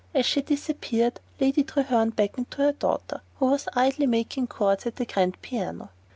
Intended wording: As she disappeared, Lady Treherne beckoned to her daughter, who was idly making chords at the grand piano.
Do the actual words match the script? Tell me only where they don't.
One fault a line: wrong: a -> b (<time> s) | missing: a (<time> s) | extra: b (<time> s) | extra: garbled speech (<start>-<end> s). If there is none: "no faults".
no faults